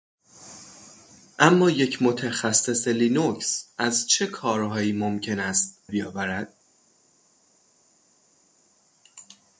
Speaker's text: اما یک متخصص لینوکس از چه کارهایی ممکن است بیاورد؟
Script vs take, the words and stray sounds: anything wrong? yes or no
no